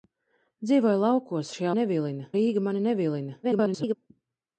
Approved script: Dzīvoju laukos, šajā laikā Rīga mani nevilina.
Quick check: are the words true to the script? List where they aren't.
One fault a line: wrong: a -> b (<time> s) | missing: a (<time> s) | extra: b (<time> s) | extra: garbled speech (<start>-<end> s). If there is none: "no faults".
wrong: laikā -> nevilina (1.8 s)
extra: garbled speech (3.4-3.9 s)